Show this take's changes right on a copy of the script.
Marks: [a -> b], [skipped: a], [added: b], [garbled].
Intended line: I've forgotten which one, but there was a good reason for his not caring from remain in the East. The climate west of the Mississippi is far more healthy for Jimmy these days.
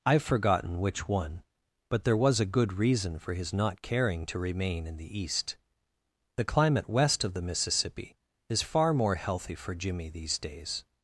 I've forgotten which one, but there was a good reason for his not caring [from -> to] remain in the East. The climate west of the Mississippi is far more healthy for Jimmy these days.